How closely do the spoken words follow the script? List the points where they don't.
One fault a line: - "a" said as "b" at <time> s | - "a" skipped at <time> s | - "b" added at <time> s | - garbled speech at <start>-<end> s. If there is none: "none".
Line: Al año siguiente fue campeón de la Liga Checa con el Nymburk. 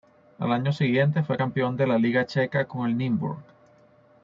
none